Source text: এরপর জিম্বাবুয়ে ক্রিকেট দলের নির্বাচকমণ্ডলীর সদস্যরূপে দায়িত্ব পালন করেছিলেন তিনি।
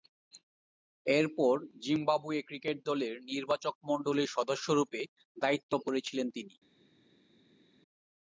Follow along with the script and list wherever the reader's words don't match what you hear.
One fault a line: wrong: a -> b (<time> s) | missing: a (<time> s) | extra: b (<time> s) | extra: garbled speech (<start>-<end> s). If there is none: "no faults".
missing: পালন (5.7 s)